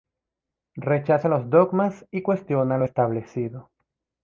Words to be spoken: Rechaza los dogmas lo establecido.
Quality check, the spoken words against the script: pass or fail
fail